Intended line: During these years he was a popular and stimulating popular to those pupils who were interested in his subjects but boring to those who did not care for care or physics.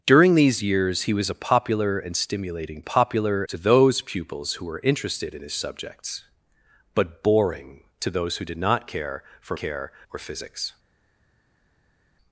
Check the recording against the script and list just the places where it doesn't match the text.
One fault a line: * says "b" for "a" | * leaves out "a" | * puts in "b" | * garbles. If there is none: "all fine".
all fine